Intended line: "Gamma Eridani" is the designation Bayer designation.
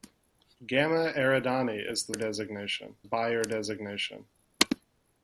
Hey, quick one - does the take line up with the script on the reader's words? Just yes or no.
yes